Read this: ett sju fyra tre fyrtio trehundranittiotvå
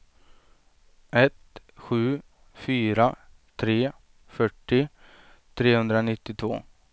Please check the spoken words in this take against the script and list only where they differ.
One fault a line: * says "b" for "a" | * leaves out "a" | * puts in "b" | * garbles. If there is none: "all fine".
all fine